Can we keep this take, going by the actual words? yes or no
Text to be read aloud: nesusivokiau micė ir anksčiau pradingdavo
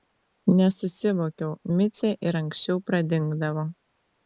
yes